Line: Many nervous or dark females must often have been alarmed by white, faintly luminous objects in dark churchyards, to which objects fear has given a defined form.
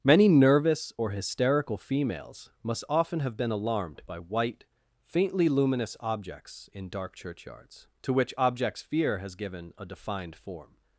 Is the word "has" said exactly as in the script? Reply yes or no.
yes